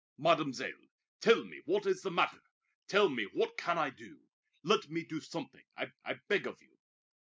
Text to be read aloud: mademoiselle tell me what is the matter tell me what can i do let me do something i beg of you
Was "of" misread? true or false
false